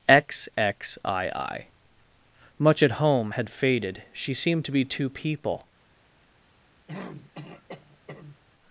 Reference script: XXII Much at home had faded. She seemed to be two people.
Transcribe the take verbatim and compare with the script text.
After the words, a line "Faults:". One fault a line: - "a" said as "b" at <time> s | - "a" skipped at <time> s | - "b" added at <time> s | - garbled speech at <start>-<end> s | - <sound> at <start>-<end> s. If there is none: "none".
XXII Much at home had faded. She seemed to be two people.
Faults:
- throat clearing at 6.9-8.4 s